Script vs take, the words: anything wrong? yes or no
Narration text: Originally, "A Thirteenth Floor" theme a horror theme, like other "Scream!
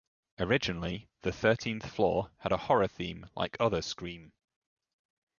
yes